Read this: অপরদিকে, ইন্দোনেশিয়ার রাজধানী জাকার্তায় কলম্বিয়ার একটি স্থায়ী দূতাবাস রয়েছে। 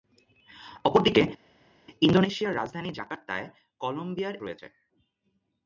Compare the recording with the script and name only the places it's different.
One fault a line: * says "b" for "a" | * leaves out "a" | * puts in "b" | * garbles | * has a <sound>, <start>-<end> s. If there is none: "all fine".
* leaves out "একটি স্থায়ী দূতাবাস"